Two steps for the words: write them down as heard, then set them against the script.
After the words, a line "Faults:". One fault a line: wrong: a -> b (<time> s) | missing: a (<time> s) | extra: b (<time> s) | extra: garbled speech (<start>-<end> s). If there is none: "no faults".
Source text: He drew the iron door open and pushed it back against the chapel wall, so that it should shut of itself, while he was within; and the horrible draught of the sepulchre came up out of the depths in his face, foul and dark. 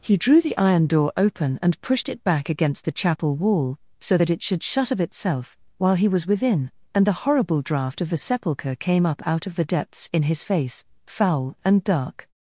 He drew the iron door open and pushed it back against the chapel wall, so that it should shut of itself, while he was within; and the horrible draught of the sepulchre came up out of the depths in his face, foul and dark.
Faults:
no faults